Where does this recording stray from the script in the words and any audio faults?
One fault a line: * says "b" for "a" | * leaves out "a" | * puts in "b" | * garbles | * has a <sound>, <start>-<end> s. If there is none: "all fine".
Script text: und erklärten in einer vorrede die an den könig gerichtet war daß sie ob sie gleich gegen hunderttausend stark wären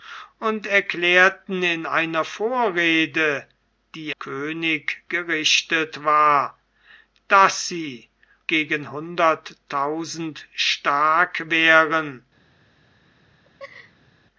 * leaves out "an den"
* leaves out "ob sie gleich"
* has a laugh, 13.4-14.1 s